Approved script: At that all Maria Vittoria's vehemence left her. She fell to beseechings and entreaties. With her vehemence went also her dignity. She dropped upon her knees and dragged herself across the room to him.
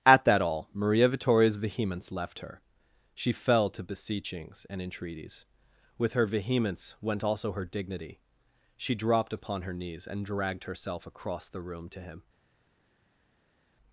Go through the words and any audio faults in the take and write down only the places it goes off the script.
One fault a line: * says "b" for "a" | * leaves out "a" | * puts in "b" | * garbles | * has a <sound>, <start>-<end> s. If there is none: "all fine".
all fine